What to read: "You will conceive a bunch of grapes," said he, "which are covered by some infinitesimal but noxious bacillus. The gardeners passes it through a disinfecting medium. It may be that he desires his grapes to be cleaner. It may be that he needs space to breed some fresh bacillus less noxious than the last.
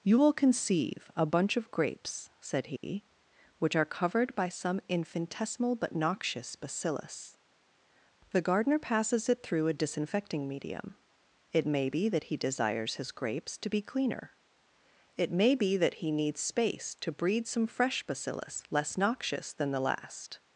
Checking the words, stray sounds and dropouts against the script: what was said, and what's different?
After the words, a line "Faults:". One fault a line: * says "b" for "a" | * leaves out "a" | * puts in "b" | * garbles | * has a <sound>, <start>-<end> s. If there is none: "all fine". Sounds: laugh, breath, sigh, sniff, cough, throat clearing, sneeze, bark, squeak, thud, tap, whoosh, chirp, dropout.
"You will conceive a bunch of grapes," said he, "which are covered by some infinitesimal but noxious bacillus. The gardener passes it through a disinfecting medium. It may be that he desires his grapes to be cleaner. It may be that he needs space to breed some fresh bacillus less noxious than the last.
Faults:
* has a dropout, 2.8-2.8 s
* says "gardener" for "gardeners"